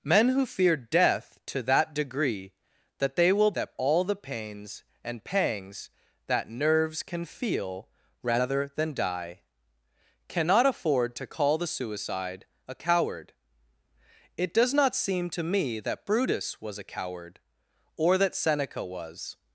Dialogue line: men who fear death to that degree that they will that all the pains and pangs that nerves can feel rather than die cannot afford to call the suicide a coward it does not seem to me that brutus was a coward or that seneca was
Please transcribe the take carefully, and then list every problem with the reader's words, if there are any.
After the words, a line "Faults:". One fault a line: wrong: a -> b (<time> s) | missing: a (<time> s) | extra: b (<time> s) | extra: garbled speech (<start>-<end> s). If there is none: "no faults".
men who fear death to that degree that they will that all the pains and pangs that nerves can feel rather than die cannot afford to call the suicide a coward it does not seem to me that brutus was a coward or that seneca was
Faults:
no faults